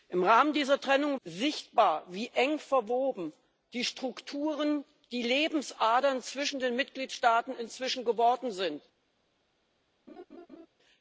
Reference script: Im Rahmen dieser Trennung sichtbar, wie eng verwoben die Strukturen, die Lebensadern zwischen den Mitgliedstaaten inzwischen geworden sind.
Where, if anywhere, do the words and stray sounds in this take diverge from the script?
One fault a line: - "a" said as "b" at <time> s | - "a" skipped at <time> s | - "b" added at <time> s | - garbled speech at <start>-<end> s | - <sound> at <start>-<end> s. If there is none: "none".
- laugh at 10.1-10.7 s